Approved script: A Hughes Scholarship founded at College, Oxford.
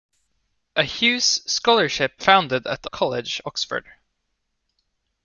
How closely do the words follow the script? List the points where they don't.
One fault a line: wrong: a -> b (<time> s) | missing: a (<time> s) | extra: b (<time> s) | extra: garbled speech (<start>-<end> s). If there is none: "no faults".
no faults